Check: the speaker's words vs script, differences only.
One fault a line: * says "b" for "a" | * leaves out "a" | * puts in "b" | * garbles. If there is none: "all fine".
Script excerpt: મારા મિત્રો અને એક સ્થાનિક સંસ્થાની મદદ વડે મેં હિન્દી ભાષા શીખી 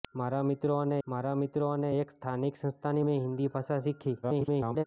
* puts in "મારા મિત્રો અને"
* leaves out "મદદ વડે"
* garbles